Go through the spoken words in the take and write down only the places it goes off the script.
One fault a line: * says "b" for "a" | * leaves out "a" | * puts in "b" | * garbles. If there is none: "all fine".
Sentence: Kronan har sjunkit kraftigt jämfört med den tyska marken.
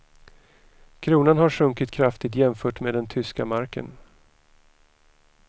all fine